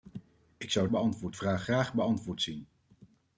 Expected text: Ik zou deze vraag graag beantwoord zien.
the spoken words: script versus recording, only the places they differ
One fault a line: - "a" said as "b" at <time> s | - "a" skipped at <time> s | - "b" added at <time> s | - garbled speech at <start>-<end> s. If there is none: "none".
- "deze" said as "beantwoord" at 0.9 s